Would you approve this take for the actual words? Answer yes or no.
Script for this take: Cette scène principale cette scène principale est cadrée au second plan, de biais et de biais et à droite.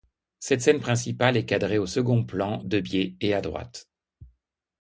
no